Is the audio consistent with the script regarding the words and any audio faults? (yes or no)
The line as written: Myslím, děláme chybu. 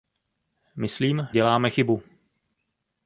yes